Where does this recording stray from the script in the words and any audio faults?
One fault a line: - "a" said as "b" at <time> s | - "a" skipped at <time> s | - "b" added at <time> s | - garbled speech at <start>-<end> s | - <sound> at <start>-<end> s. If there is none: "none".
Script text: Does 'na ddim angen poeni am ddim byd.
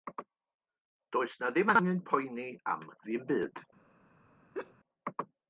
- laugh at 4.5-4.7 s